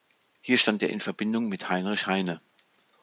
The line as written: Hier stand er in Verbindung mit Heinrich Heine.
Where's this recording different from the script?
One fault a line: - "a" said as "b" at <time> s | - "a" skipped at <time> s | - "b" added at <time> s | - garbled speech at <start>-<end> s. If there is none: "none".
none